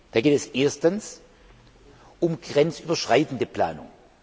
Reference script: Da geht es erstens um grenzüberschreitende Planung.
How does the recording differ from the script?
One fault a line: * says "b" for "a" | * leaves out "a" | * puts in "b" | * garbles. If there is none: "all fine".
all fine